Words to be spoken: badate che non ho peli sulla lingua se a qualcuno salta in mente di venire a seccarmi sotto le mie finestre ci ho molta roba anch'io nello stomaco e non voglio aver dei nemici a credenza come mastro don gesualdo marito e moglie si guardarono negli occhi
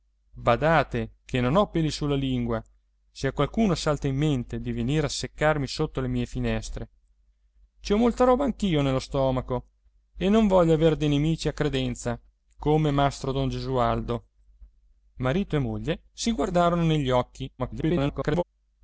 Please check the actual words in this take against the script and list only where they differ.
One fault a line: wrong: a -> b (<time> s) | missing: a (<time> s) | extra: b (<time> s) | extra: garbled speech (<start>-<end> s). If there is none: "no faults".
extra: garbled speech (17.6-18.4 s)